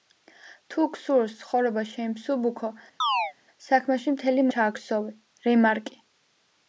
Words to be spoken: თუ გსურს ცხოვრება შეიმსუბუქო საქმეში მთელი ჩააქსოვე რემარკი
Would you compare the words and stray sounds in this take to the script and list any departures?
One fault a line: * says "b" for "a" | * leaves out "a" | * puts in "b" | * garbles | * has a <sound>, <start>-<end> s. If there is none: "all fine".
* has a chirp, 3.0-3.3 s